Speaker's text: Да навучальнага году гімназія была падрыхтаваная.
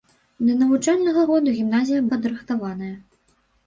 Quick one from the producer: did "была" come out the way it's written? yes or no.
no